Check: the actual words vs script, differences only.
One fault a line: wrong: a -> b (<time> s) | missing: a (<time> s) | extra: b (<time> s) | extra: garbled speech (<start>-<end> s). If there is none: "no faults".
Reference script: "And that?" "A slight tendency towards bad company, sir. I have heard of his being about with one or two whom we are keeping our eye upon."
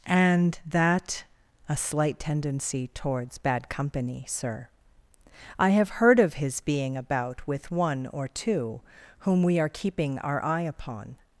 no faults